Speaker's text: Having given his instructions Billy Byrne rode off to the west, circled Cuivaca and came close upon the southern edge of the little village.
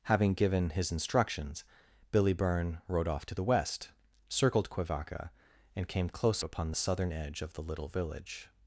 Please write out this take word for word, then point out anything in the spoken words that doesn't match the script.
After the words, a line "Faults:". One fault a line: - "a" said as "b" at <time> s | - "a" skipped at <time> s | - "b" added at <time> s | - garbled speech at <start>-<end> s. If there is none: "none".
Having given his instructions Billy Byrne rode off to the west, circled Cuivaca and came close upon the southern edge of the little village.
Faults:
none